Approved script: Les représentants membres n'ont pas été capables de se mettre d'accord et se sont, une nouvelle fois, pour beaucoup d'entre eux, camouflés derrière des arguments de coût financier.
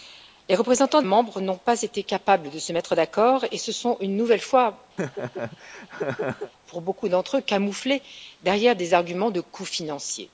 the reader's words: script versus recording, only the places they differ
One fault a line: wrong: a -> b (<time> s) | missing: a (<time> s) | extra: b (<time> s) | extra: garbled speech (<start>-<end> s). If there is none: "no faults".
no faults